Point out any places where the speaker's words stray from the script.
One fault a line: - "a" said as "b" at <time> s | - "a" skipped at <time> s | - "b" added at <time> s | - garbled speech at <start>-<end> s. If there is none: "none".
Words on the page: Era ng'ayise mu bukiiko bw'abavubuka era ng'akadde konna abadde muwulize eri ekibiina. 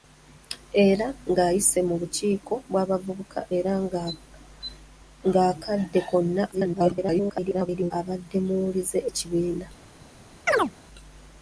- garbled speech at 6.5-7.9 s
- "eri" skipped at 9.0 s